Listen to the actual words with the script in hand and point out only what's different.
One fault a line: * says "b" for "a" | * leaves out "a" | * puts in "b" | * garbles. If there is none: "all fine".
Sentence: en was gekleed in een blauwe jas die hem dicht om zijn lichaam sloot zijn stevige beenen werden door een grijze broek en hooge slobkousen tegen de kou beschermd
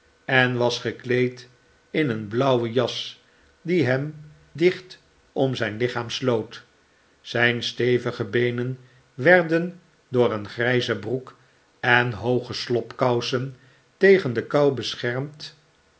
all fine